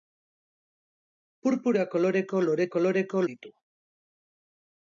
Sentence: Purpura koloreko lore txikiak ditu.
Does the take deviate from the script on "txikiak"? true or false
true